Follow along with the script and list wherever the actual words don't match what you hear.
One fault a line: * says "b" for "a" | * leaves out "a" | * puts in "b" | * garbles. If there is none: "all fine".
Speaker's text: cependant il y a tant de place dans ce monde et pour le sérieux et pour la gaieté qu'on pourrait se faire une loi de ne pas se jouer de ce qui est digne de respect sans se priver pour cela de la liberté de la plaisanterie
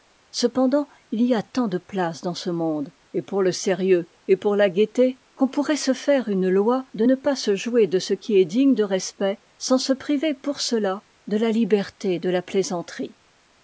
all fine